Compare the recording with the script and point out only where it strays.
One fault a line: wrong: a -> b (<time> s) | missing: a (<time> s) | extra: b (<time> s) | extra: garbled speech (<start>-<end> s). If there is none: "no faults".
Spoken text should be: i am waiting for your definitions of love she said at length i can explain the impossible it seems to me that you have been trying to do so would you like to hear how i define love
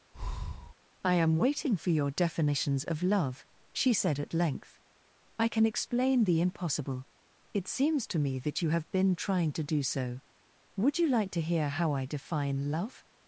no faults